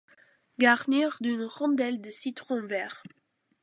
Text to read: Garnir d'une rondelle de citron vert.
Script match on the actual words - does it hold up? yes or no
yes